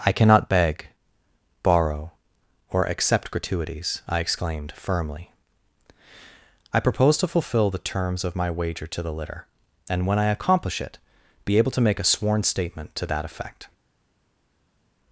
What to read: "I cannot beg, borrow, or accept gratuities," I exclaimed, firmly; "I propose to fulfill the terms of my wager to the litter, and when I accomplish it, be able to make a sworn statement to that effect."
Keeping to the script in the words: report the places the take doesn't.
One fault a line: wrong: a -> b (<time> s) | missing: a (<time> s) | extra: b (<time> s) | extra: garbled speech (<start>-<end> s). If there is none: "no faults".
no faults